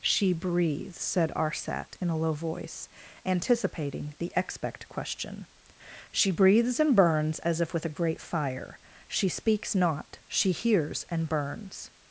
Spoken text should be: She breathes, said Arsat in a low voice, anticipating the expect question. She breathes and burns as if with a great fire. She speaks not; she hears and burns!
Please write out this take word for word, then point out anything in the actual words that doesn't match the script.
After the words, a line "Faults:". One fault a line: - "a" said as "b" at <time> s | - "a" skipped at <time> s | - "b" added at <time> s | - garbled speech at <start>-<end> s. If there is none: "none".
She breathes, said Arsat in a low voice, anticipating the expect question. She breathes and burns as if with a great fire. She speaks not; she hears and burns!
Faults:
none